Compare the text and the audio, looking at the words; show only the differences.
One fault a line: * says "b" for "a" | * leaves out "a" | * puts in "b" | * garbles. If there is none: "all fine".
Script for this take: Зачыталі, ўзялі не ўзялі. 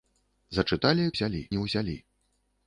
all fine